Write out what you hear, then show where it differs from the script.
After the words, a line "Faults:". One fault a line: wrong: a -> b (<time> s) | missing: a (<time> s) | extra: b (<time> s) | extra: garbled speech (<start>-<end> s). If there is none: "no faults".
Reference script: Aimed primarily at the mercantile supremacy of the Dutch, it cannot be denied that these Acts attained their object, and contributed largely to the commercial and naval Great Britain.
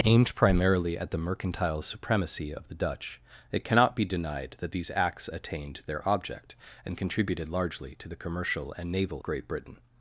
Aimed primarily at the mercantile supremacy of the Dutch, it cannot be denied that these Acts attained their object, and contributed largely to the commercial and naval Great Britain.
Faults:
no faults